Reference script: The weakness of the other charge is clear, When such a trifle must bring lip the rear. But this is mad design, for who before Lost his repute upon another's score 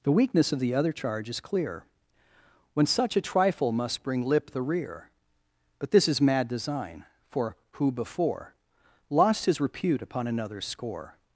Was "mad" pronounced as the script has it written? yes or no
yes